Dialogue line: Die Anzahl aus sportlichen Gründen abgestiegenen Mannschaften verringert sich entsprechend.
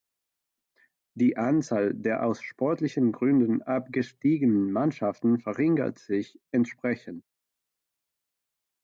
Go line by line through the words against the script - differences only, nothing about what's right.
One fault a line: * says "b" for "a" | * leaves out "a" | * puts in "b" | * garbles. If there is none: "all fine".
* puts in "der"